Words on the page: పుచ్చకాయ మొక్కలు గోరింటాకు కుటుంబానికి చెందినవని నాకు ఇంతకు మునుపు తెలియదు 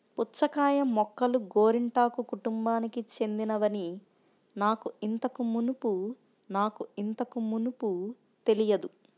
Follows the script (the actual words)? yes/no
no